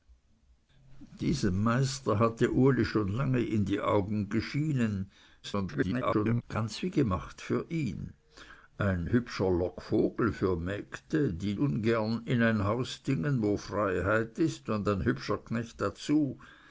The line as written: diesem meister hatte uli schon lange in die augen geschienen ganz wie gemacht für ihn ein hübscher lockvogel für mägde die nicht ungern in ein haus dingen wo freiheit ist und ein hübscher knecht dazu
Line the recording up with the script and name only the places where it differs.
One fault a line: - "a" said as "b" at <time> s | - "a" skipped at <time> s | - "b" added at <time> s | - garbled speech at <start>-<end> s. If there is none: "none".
- garbled speech at 5.4-6.4 s
- "nicht" skipped at 11.5 s